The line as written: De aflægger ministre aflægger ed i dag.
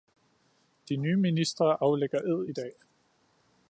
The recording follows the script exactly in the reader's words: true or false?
false